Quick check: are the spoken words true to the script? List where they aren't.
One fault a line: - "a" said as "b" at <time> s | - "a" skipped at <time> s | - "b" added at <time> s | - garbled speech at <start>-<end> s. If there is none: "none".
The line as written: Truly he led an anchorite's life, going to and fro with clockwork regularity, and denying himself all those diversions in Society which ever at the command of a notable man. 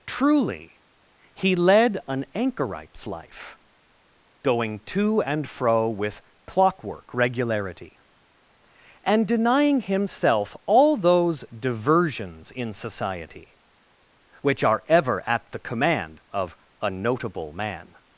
- "are" added at 14.6 s